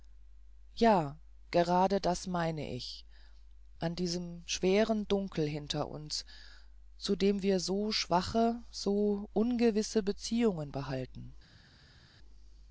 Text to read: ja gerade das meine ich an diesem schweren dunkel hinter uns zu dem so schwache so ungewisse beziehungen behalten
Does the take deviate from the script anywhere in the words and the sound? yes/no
yes